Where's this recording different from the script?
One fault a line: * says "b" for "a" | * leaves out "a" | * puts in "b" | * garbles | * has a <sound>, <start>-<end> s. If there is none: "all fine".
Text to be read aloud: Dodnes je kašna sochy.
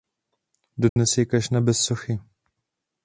* has a dropout, 0.9-1.0 s
* puts in "bez"